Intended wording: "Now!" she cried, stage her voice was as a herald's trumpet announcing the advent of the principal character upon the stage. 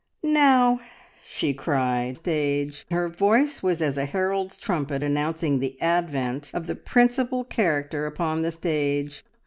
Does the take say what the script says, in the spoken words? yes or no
yes